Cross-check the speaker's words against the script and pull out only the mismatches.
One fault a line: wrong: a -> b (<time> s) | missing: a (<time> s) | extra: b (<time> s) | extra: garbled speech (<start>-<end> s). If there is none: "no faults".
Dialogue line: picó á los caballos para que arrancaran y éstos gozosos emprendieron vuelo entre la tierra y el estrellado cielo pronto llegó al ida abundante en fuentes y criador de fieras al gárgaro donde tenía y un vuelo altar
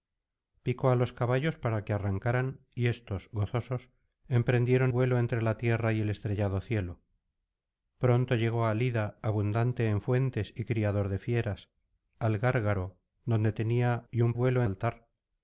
no faults